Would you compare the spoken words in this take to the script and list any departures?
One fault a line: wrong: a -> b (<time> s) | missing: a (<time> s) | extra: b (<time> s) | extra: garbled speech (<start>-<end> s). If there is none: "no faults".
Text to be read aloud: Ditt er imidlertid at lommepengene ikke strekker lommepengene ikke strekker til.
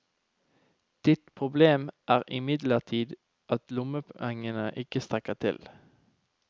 extra: problem (1.4 s)
missing: lommepengene ikke strekker (5.3 s)